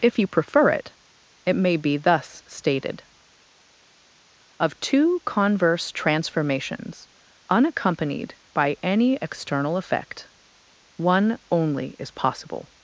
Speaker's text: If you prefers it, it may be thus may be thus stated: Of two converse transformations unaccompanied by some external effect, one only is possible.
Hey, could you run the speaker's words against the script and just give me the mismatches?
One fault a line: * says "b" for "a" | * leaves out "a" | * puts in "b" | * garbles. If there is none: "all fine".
* says "prefer" for "prefers"
* leaves out "may be thus"
* says "any" for "some"